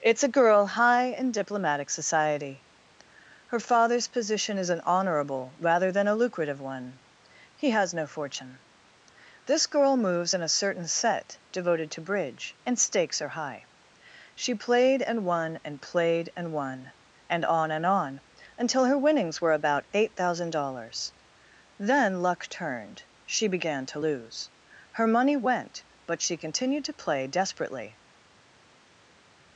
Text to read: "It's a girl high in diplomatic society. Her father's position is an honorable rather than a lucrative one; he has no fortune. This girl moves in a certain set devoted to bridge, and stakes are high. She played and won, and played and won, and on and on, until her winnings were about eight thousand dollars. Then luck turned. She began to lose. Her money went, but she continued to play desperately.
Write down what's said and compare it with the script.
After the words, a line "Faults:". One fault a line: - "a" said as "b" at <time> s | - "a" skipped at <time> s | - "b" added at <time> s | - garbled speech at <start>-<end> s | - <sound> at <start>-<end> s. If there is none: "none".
"It's a girl high in diplomatic society. Her father's position is an honorable rather than a lucrative one; he has no fortune. This girl moves in a certain set devoted to bridge, and stakes are high. She played and won, and played and won, and on and on, until her winnings were about eight thousand dollars. Then luck turned. She began to lose. Her money went, but she continued to play desperately.
Faults:
none